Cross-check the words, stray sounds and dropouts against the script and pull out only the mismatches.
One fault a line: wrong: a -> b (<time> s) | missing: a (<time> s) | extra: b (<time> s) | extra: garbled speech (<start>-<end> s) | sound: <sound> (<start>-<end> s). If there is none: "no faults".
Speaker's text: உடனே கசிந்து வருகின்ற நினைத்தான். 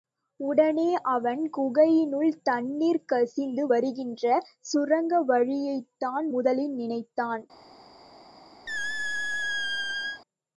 extra: அவன் குகையினுள் தண்ணீர் (1.1 s)
extra: சுரங்க வழியைத்தான் முதலில் (4.6 s)
sound: squeak (8.7-10.2 s)